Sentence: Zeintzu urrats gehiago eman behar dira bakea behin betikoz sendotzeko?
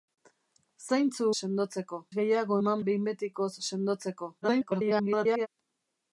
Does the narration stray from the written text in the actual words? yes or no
yes